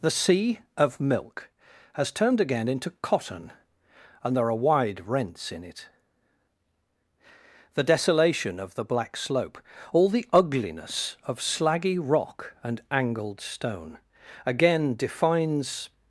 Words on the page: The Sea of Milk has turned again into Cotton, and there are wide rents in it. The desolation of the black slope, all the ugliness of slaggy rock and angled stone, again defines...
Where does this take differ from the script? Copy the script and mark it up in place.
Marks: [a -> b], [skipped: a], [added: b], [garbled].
The Sea of Milk has turned again into Cotton, and there are wide rents in it. The desolation of the black slope, all the ugliness of slaggy rock and angled stone, again defines...